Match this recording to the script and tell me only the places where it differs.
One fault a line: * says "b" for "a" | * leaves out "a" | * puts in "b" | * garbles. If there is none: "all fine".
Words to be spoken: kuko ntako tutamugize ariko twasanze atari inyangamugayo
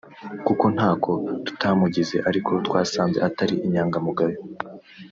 all fine